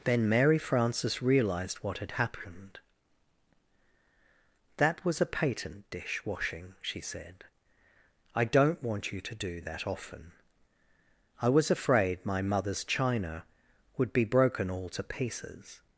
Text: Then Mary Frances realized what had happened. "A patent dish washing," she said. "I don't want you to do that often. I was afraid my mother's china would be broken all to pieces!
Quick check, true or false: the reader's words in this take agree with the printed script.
false